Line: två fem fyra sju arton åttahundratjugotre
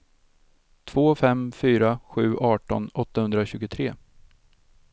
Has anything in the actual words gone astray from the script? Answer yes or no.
no